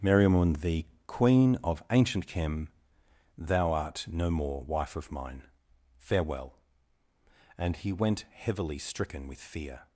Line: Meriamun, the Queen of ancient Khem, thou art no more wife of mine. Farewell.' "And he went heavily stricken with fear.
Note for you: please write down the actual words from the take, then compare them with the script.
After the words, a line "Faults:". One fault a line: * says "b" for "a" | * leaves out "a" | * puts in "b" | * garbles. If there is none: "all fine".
Meriamun, the Queen of ancient Khem, thou art no more wife of mine. Farewell.' "And he went heavily stricken with fear.
Faults:
all fine